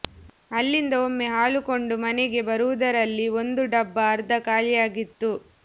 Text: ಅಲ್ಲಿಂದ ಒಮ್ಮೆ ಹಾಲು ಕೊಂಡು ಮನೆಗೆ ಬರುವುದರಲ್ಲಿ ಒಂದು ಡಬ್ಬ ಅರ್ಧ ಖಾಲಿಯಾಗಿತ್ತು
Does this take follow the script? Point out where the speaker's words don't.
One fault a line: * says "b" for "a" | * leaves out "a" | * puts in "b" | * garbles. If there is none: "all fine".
all fine